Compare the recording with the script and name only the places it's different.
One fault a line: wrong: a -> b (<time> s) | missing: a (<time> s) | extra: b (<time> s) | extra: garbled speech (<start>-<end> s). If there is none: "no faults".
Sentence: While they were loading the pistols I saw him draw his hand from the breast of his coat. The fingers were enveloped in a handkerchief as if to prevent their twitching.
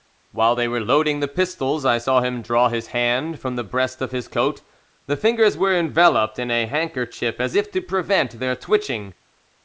no faults